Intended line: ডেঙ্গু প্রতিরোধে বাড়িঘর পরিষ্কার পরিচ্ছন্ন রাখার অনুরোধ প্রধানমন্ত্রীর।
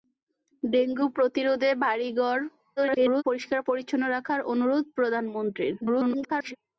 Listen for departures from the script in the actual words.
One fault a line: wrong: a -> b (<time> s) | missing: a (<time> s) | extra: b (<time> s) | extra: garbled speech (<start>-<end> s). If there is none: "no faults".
extra: garbled speech (2.8-3.2 s)
extra: garbled speech (5.8-6.6 s)